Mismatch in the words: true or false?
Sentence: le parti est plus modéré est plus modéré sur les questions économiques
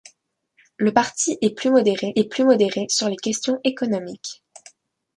false